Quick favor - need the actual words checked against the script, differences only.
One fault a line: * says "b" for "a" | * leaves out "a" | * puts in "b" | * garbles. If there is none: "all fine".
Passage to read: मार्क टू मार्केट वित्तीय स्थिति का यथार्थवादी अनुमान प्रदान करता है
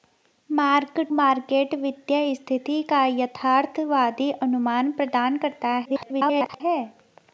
* leaves out "टू"
* garbles